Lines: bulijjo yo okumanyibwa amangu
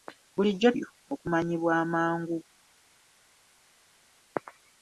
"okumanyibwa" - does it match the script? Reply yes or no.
yes